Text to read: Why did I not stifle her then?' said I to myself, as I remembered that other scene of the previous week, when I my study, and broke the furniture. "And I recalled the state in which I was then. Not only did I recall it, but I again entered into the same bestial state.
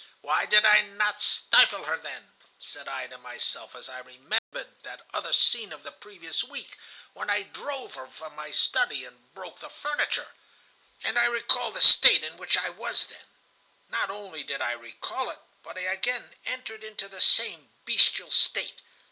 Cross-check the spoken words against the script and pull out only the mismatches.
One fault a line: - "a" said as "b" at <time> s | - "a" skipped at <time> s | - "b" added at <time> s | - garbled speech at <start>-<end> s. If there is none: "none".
- "drove her from" added at 7.4 s